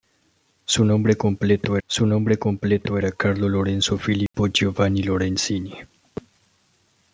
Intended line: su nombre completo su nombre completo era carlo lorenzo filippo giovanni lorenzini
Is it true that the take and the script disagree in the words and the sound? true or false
true